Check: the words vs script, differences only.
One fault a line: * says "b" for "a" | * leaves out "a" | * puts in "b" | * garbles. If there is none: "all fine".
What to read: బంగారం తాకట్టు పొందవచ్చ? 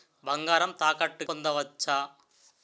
all fine